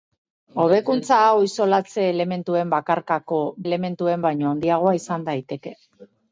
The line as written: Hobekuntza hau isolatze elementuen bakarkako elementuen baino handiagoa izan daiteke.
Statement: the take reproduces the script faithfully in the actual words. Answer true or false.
true